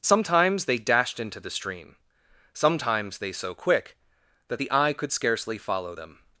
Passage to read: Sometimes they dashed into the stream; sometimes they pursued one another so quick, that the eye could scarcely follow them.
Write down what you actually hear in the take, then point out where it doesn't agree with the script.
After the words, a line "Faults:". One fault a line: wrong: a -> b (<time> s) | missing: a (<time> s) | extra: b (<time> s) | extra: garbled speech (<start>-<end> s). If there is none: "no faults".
Sometimes they dashed into the stream; sometimes they so quick, that the eye could scarcely follow them.
Faults:
missing: pursued one another (3.3 s)